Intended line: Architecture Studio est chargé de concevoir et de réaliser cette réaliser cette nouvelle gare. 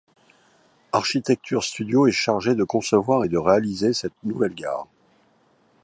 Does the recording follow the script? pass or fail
fail